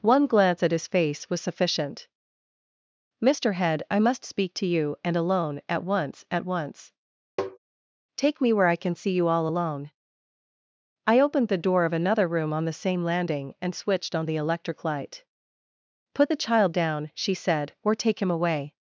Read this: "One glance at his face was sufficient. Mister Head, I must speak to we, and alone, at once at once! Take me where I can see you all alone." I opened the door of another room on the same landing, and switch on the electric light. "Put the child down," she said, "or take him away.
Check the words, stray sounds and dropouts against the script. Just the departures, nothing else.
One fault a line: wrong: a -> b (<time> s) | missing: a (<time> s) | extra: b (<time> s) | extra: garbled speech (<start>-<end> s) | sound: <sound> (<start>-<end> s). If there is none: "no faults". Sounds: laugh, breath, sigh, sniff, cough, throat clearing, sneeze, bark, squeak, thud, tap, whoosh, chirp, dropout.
wrong: we -> you (4.7 s)
sound: tap (7.4-7.6 s)
wrong: switch -> switched (13.7 s)